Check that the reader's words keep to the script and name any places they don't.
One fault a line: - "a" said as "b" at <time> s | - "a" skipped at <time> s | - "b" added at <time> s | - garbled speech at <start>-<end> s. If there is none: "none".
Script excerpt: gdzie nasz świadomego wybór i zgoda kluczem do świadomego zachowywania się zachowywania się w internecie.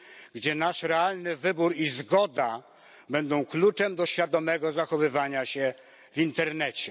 - "świadomego" said as "realny" at 0.8 s
- "będą" added at 3.1 s
- "zachowywania się" skipped at 5.7 s